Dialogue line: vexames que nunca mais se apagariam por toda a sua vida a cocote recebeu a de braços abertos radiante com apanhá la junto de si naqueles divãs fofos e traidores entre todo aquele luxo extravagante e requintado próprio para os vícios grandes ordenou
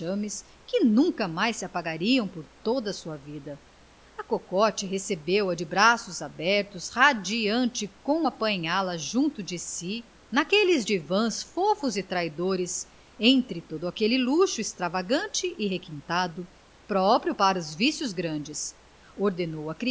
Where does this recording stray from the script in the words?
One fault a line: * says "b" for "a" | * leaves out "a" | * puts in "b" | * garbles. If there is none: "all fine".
all fine